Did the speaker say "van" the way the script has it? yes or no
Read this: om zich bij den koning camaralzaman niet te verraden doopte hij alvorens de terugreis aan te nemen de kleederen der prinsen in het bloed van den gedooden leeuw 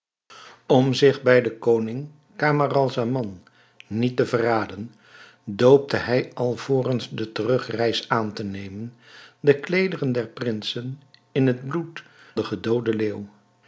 no